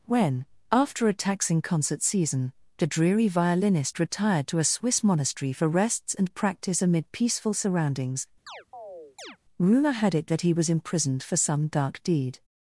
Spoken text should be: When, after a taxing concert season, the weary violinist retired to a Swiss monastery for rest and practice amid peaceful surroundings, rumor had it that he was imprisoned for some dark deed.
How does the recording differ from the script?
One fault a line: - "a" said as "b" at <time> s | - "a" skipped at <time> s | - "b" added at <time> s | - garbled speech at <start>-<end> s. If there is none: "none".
- "weary" said as "dreary" at 2.9 s
- "rest" said as "rests" at 5.7 s